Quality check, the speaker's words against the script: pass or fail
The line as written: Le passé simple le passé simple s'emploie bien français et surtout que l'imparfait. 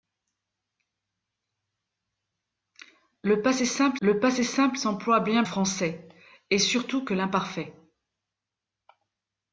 pass